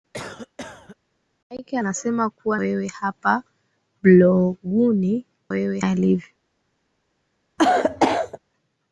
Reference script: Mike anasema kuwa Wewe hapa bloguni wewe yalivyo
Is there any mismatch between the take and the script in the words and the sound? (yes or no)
yes